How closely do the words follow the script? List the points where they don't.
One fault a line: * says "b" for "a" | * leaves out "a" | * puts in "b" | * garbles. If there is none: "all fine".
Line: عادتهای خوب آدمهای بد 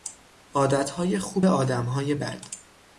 all fine